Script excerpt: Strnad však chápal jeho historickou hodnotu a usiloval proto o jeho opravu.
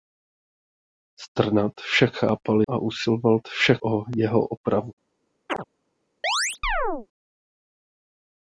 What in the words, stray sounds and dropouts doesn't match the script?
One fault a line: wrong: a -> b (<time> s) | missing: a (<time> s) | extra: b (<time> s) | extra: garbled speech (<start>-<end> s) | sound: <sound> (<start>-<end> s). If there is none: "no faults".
missing: jeho historickou hodnotu (2.6 s)
wrong: proto -> však (3.5 s)
sound: chirp (5.5-5.6 s)
sound: chirp (6.2-7.1 s)